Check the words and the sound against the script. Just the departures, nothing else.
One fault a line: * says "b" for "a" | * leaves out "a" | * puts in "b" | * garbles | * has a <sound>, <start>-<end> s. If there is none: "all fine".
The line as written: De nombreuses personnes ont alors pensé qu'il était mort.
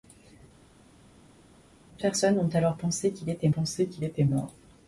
* leaves out "nombreuses"
* puts in "pensé qu'il était"